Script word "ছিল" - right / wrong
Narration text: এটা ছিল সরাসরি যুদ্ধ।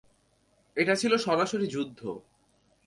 right